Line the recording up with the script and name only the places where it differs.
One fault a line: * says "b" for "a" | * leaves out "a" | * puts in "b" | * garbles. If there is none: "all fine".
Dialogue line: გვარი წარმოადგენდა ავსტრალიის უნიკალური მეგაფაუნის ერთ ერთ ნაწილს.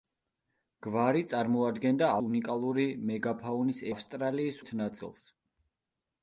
* leaves out "ავსტრალიის"
* says "ავსტრალიის" for "ერთ"